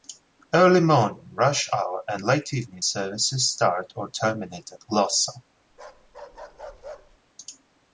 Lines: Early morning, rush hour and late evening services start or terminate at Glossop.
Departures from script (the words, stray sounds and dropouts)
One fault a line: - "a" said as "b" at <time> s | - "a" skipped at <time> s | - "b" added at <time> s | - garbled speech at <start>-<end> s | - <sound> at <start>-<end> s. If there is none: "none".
- bark at 5.7-7.2 s